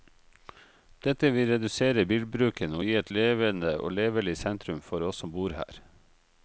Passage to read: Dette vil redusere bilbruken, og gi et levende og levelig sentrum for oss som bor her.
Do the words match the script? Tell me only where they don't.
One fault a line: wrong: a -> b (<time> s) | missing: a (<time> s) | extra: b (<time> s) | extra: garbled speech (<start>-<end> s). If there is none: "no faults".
no faults